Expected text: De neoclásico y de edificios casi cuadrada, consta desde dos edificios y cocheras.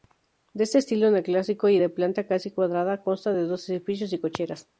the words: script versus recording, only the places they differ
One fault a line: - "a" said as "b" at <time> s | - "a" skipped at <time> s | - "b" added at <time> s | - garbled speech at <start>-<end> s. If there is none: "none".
- "estilo" added at 0.8 s
- "edificios" said as "planta" at 1.9 s
- "desde" said as "de" at 3.3 s